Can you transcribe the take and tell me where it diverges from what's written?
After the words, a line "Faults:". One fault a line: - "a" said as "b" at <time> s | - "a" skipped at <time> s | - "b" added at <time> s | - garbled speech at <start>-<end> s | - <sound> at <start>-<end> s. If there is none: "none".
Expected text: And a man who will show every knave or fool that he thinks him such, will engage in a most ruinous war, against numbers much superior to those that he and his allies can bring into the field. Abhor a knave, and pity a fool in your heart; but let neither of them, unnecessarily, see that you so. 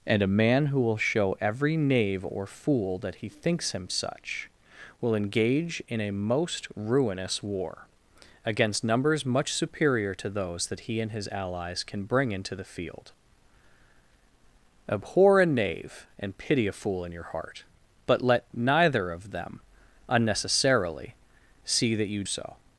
And a man who will show every knave or fool that he thinks him such, will engage in a most ruinous war, against numbers much superior to those that he and his allies can bring into the field. Abhor a knave, and pity a fool in your heart; but let neither of them, unnecessarily, see that you so.
Faults:
none